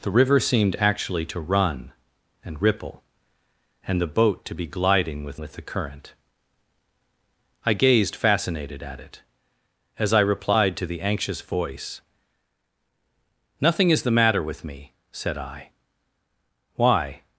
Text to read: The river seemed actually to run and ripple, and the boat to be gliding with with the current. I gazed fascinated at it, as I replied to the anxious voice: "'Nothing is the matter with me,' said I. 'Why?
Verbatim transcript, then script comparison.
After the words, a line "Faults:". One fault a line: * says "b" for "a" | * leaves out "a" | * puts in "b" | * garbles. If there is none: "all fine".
The river seemed actually to run and ripple, and the boat to be gliding with with the current. I gazed fascinated at it, as I replied to the anxious voice: "'Nothing is the matter with me,' said I. 'Why?
Faults:
all fine